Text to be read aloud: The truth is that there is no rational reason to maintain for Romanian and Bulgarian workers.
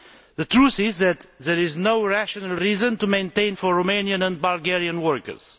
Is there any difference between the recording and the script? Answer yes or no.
no